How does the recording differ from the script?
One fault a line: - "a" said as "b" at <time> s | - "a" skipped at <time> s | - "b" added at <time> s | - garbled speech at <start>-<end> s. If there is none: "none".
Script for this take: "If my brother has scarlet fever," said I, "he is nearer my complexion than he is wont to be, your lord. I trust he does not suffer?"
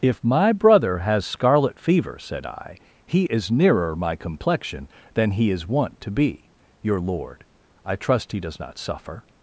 none